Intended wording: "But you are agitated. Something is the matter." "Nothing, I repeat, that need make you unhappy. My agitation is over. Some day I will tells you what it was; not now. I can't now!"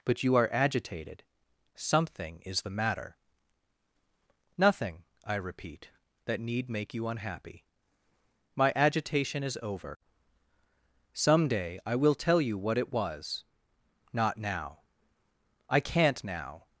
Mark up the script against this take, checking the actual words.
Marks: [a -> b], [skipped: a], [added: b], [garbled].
"But you are agitated. Something is the matter." "Nothing, I repeat, that need make you unhappy. My agitation is over. Some day I will [tells -> tell] you what it was; not now. I can't now!"